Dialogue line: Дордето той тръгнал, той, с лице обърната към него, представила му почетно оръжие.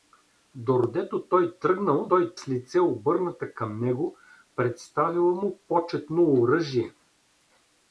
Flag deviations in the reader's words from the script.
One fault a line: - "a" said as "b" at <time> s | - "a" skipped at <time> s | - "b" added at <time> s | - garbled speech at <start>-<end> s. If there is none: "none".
none